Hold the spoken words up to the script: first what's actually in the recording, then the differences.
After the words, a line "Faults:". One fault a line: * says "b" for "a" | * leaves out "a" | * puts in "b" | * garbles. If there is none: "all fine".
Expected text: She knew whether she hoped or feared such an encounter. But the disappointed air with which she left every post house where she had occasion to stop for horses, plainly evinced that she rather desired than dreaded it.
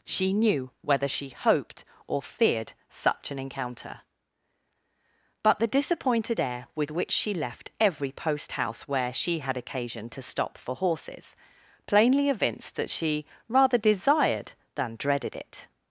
She knew whether she hoped or feared such an encounter. But the disappointed air with which she left every post house where she had occasion to stop for horses, plainly evinced that she rather desired than dreaded it.
Faults:
all fine